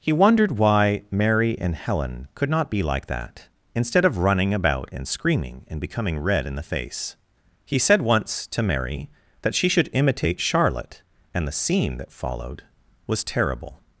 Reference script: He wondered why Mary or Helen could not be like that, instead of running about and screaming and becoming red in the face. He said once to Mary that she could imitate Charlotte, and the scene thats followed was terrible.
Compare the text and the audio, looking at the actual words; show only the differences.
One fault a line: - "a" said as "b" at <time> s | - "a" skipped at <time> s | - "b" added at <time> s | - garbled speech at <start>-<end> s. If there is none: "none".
- "or" said as "and" at 1.6 s
- "could" said as "should" at 9.7 s
- "thats" said as "that" at 12.0 s